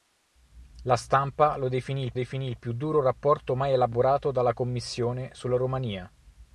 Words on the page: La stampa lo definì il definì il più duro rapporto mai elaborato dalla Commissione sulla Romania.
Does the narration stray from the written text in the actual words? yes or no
no